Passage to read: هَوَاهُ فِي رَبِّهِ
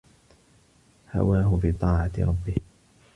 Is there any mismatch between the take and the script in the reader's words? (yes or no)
yes